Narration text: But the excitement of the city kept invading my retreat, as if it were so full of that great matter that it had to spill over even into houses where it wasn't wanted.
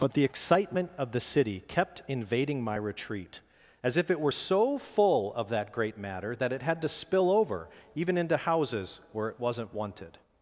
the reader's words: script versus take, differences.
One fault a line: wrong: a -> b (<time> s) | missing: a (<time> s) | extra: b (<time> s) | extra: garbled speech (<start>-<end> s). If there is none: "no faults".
no faults